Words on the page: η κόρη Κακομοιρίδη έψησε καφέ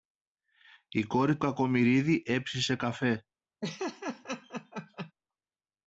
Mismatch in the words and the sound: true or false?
true